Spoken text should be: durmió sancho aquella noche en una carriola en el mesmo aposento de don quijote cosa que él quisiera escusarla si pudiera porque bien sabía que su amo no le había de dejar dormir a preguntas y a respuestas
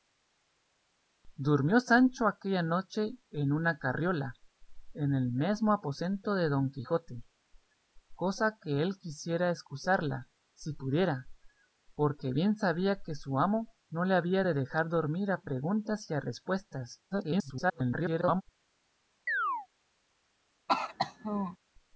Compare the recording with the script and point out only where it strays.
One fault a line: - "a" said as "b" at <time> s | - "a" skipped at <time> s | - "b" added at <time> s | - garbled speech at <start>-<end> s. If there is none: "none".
- garbled speech at 17.1-18.4 s